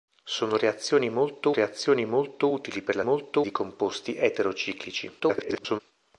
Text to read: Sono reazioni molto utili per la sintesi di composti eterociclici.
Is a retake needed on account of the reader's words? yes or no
yes